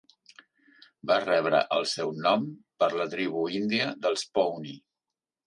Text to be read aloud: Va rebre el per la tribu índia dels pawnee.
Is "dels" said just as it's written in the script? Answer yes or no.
yes